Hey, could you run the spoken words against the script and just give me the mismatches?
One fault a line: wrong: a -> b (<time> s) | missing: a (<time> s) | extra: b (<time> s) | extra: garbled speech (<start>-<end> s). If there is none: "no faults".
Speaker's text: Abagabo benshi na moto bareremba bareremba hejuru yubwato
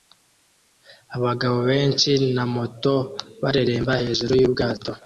missing: bareremba (3.9 s)